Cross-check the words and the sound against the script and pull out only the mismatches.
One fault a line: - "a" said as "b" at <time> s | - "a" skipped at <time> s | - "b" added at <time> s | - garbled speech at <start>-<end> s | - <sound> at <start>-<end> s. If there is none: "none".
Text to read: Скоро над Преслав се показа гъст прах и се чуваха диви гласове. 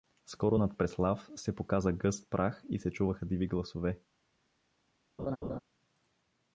- laugh at 5.2-5.6 s